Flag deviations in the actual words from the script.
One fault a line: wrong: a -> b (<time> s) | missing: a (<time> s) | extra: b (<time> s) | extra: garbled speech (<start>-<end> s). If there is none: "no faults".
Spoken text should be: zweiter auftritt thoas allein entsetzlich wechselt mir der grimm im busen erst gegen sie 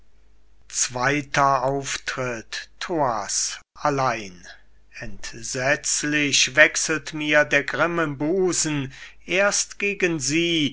no faults